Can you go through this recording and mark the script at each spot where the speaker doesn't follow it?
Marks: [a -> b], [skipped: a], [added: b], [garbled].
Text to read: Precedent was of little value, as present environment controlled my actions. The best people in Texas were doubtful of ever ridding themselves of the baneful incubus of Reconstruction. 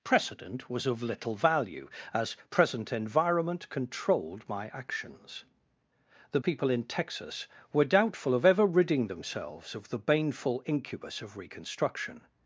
Precedent was of little value, as present environment controlled my actions. The [skipped: best] people in Texas were doubtful of ever ridding themselves of the baneful incubus of Reconstruction.